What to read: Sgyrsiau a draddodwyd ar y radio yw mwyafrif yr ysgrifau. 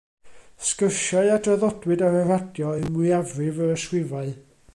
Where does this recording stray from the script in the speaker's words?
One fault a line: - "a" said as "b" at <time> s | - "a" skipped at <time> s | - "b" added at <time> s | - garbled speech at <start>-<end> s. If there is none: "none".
none